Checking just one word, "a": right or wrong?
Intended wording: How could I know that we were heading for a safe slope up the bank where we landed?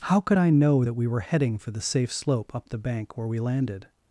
wrong